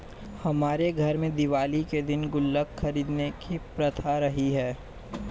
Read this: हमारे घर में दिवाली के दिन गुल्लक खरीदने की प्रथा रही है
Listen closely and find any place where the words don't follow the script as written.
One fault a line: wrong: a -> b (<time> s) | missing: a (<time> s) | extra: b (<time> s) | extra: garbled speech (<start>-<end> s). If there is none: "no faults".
no faults